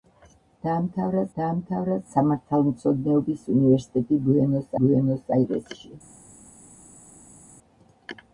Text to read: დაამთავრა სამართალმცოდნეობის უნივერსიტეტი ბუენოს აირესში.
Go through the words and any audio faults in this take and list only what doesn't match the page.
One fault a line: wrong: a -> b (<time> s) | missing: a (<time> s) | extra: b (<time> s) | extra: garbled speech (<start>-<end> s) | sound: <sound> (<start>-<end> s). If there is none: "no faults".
extra: დაამთავრა (1.4 s)
extra: ბუენოს (4.8 s)